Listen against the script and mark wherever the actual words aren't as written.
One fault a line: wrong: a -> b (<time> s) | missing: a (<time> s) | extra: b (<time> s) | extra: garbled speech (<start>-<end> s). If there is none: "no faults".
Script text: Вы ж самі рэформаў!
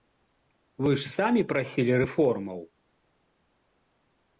extra: прасілі (1.5 s)